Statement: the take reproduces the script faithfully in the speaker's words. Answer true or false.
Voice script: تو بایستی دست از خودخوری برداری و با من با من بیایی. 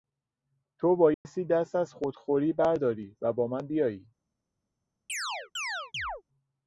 false